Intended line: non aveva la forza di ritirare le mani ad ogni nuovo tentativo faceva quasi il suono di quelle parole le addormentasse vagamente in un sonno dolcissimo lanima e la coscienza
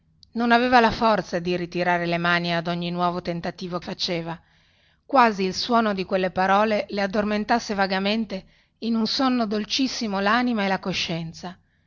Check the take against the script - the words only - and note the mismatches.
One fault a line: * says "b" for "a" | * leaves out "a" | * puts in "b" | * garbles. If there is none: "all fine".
all fine